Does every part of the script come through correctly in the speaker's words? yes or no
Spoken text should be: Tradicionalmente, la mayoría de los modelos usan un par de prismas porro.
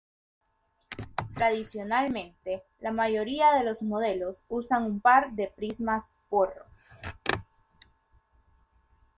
yes